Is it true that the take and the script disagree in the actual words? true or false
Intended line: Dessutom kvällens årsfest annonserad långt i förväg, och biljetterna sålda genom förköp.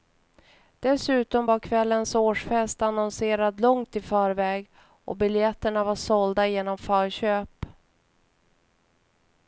true